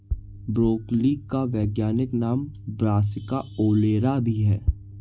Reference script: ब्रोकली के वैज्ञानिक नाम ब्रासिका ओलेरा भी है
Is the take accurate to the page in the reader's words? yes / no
no